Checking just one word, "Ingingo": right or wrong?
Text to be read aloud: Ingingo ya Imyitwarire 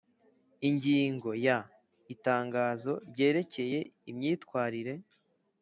right